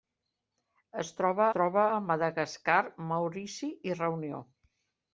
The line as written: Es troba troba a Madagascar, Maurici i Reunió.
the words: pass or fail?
pass